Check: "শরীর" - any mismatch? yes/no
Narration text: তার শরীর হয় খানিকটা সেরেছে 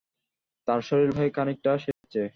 no